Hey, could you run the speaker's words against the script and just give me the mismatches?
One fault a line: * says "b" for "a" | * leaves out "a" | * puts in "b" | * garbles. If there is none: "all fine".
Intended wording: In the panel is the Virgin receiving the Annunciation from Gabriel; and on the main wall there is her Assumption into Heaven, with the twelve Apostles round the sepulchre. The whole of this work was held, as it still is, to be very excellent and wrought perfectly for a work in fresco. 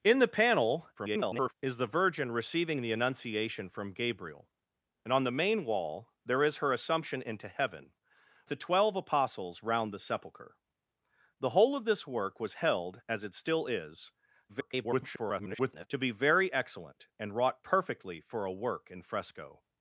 * garbles
* leaves out "with"
* garbles